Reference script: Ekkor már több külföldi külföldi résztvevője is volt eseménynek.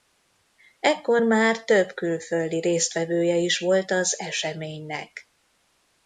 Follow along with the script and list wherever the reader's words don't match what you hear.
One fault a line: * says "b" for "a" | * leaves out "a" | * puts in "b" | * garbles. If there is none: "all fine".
* leaves out "külföldi"
* puts in "az"